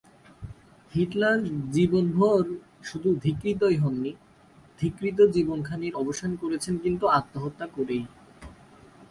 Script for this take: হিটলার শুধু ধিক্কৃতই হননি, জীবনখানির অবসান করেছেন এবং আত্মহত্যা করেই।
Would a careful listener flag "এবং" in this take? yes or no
yes